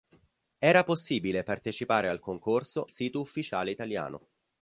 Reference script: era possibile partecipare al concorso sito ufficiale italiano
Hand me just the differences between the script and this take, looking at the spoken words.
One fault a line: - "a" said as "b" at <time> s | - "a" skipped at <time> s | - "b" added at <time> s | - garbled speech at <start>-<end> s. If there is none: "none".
none